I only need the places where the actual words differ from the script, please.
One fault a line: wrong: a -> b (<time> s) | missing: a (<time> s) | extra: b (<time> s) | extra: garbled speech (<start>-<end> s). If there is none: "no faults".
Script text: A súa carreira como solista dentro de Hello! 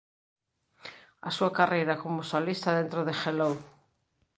no faults